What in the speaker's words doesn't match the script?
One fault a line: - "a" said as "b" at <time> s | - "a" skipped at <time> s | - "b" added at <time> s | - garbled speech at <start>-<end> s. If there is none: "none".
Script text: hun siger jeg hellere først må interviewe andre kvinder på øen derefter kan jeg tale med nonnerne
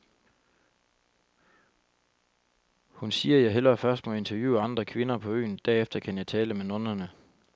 none